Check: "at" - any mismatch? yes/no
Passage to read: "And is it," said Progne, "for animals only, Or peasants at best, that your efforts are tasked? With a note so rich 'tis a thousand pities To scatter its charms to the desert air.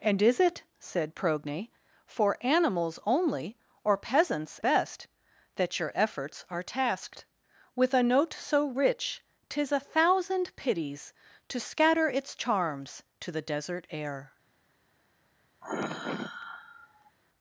yes